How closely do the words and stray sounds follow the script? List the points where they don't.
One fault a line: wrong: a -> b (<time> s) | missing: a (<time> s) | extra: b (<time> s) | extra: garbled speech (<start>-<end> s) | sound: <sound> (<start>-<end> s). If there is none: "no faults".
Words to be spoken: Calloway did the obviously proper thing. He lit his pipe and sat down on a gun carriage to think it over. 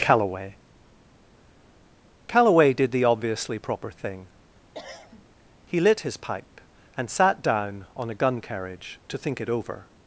extra: calloway (2.3 s)
sound: cough (4.7-5.3 s)